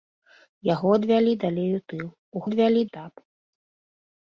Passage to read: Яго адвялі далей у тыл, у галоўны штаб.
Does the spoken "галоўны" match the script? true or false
false